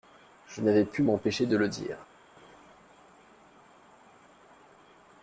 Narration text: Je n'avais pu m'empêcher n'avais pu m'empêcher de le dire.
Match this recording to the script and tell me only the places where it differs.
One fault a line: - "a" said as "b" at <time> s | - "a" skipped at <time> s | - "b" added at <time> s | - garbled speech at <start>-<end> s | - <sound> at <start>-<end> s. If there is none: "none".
- "n'avais pu m'empêcher" skipped at 1.4 s